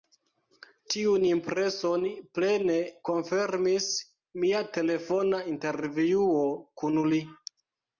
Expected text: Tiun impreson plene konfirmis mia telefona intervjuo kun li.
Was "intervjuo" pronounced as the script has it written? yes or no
yes